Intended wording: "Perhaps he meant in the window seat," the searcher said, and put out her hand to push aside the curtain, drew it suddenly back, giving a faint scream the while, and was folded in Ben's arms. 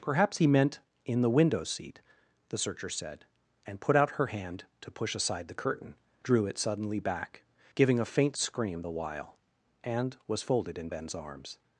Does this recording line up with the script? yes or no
yes